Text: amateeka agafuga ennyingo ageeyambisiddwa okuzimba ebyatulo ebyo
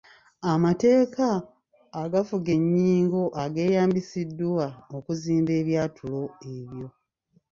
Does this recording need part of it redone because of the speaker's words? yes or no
no